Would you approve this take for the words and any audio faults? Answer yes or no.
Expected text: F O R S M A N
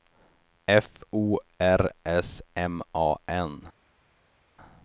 yes